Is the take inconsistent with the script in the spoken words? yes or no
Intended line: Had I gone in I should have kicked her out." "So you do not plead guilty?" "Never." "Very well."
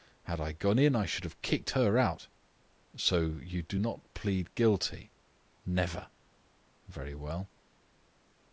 no